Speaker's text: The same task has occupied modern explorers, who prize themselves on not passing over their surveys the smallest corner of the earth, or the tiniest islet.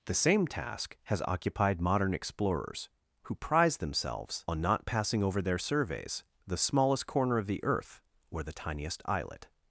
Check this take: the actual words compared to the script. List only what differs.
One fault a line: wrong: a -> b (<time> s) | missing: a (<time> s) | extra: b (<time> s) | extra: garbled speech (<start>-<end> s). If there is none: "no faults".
no faults